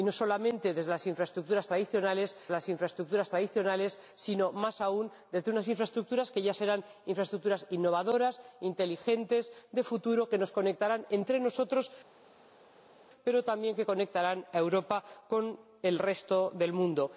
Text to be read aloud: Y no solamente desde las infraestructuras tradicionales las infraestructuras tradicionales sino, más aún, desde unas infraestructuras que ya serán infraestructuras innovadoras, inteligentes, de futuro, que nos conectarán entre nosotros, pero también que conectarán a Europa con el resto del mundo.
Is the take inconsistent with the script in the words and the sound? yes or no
no